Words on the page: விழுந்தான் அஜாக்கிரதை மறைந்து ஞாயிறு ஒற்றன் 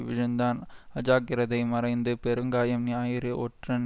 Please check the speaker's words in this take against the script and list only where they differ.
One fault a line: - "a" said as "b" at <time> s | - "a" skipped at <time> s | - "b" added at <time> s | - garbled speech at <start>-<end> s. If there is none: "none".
- "பெருங்காயம்" added at 2.2 s